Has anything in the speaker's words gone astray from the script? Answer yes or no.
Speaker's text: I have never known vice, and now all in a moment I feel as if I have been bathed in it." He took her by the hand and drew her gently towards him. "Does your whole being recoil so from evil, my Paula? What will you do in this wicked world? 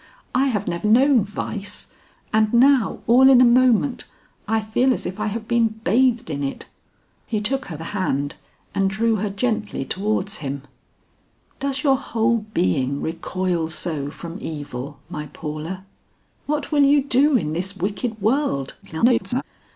yes